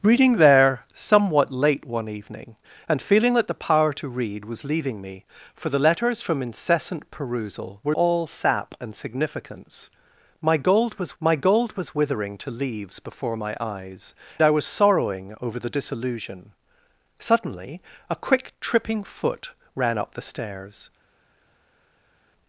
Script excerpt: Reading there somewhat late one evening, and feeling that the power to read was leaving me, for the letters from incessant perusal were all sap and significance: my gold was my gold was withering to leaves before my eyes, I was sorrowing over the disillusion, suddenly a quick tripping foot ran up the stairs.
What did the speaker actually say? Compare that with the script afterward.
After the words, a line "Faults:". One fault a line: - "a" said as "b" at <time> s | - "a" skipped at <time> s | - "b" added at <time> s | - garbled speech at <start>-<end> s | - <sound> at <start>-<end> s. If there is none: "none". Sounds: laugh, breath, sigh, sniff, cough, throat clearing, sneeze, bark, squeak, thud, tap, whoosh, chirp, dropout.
Reading there somewhat late one evening, and feeling that the power to read was leaving me, for the letters from incessant perusal were all sap and significance: my gold was my gold was withering to leaves before my eyes, I was sorrowing over the disillusion, suddenly a quick tripping foot ran up the stairs.
Faults:
none